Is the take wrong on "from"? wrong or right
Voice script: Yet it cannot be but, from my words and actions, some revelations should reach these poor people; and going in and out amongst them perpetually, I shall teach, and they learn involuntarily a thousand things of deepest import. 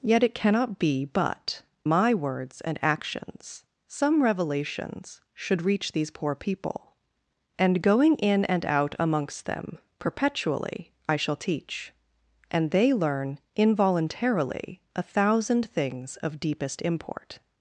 wrong